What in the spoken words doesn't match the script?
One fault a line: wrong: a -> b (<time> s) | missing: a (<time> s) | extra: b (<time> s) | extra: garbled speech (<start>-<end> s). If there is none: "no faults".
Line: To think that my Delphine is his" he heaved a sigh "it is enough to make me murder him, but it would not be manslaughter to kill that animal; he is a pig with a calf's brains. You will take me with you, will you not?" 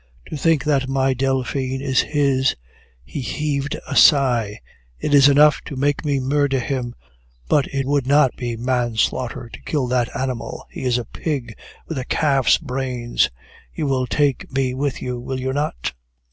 no faults